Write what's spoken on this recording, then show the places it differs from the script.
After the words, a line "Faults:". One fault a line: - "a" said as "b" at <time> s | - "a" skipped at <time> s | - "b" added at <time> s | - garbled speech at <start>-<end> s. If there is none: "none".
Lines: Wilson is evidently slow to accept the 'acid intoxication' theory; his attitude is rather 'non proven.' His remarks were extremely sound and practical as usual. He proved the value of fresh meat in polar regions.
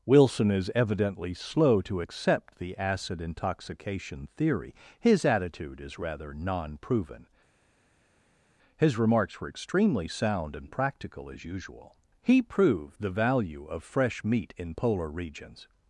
Wilson is evidently slow to accept the 'acid intoxication' theory; his attitude is rather 'non proven.' His remarks were extremely sound and practical as usual. He proved the value of fresh meat in polar regions.
Faults:
none